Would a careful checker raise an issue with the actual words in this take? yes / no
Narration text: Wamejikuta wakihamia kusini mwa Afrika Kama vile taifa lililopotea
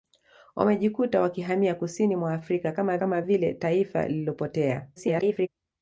yes